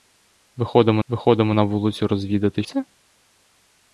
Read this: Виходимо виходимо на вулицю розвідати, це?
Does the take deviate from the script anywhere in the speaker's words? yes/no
no